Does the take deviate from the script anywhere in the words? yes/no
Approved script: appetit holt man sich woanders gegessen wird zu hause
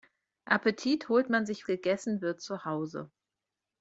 yes